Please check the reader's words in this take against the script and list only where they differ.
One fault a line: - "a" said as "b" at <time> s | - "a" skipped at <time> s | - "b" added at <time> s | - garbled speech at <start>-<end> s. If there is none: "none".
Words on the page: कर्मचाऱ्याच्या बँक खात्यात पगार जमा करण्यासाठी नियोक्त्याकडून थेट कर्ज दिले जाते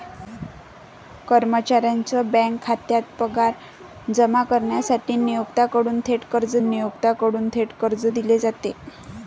- "नियोक्त्याकडून थेट कर्ज" added at 6.6 s